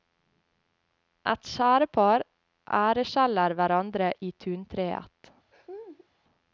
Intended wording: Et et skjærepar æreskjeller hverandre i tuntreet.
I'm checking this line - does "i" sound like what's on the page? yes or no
yes